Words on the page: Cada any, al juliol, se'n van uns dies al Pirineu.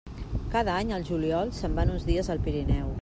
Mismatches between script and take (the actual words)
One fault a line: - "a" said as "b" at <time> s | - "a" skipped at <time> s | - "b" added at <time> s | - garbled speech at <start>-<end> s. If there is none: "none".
none